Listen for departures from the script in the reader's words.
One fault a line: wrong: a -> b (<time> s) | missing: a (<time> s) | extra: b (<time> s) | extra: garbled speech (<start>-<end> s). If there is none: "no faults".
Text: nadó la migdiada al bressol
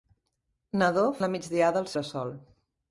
no faults